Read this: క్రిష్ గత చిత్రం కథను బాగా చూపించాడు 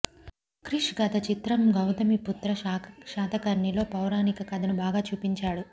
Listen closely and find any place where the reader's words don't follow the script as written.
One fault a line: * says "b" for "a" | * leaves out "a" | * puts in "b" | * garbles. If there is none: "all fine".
* puts in "గౌతమిపుత్ర శాతకర్ణిలో పౌరాణిక"